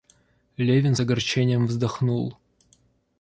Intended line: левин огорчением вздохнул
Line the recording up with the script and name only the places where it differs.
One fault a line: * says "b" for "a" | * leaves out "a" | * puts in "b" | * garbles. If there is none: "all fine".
all fine